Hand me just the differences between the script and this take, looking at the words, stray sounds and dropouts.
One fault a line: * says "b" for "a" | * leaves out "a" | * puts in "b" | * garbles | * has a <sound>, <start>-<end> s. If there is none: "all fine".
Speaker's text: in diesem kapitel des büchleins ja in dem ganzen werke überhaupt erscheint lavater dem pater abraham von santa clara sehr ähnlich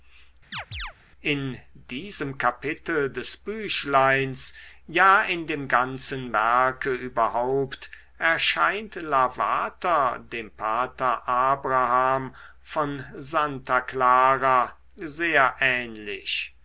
* has a chirp, 0.5-0.9 s